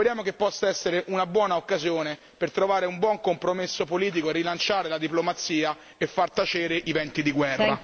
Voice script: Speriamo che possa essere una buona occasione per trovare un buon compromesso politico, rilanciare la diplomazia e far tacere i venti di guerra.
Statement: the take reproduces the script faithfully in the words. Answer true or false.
true